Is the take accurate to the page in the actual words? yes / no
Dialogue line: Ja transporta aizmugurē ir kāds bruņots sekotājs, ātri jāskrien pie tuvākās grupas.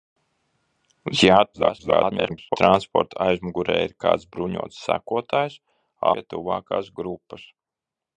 no